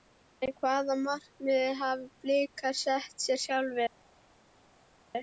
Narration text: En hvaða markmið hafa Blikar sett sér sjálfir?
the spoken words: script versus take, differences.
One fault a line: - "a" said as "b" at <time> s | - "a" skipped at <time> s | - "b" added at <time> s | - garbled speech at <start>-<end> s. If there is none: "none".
none